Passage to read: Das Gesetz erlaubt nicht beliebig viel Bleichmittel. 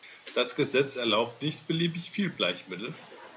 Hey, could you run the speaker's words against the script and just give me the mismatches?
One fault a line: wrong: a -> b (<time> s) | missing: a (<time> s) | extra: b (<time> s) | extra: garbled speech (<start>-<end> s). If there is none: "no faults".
no faults